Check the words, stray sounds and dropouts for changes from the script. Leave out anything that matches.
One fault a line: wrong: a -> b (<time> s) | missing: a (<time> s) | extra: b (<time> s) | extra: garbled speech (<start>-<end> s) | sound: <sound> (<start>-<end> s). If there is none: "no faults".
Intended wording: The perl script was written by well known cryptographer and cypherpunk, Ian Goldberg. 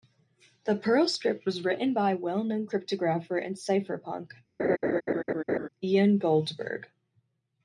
sound: laugh (4.6-5.7 s)